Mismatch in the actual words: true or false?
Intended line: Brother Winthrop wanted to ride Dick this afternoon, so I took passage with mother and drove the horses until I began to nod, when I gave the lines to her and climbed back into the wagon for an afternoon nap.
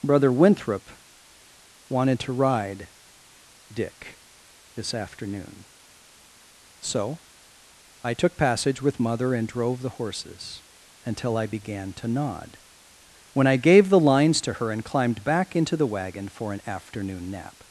false